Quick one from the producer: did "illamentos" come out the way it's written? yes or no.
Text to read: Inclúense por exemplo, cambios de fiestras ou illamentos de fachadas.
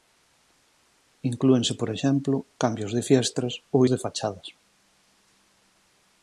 no